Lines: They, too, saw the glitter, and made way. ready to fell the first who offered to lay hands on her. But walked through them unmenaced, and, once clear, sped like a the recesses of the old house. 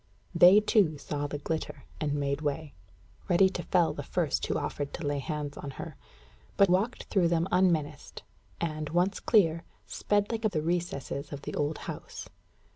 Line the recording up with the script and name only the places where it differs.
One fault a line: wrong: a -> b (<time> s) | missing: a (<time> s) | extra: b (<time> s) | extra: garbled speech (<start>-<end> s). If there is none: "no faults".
no faults